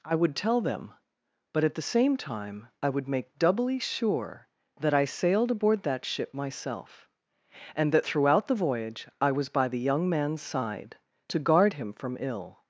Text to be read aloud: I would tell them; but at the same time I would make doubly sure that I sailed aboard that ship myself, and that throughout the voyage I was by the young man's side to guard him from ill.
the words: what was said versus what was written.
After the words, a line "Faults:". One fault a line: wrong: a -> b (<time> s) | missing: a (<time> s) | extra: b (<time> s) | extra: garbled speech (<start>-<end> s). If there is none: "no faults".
I would tell them; but at the same time I would make doubly sure that I sailed aboard that ship myself, and that throughout the voyage I was by the young man's side to guard him from ill.
Faults:
no faults